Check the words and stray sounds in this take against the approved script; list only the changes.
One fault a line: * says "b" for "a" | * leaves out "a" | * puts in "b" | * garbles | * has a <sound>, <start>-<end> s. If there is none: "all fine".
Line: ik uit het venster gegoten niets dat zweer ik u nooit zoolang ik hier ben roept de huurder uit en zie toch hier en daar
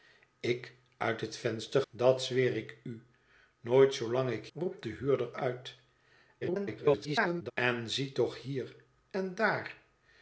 * leaves out "gegoten niets"
* leaves out "hier ben"
* garbles